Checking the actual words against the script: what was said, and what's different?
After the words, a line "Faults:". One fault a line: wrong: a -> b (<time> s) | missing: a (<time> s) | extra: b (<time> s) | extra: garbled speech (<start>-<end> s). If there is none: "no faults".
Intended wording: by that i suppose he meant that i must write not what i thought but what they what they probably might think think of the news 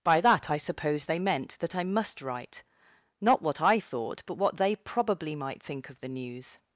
by that i suppose they meant that i must write not what i thought but what they probably might think of the news
Faults:
wrong: he -> they (1.1 s)
missing: what they (4.8 s)
missing: think (5.9 s)